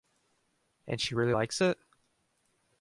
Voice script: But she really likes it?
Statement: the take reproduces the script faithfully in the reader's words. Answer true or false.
false